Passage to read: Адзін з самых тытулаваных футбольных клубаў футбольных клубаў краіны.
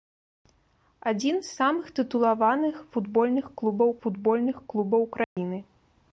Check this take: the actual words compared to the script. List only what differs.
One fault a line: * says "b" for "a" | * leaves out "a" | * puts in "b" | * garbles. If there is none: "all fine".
all fine